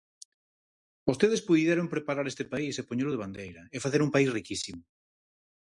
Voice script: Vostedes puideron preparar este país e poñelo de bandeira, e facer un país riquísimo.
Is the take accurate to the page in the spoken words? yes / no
yes